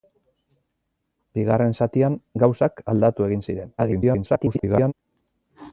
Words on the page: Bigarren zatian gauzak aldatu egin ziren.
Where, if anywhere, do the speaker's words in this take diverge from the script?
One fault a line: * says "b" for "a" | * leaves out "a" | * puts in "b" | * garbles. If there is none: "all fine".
* garbles